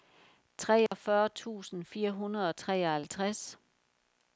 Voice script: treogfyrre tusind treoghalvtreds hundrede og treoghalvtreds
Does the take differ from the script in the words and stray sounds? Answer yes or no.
yes